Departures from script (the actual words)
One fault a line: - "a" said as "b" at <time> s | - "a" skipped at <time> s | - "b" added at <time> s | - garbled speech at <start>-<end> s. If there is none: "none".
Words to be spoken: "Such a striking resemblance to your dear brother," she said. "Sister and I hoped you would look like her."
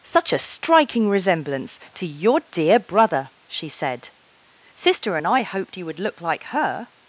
none